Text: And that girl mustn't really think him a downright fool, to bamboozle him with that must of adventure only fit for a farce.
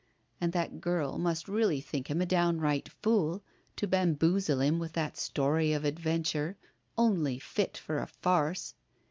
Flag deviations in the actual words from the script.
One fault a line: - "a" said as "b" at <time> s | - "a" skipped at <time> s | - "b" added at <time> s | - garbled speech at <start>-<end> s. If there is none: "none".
- "mustn't" said as "must" at 1.2 s
- "must" said as "story" at 5.2 s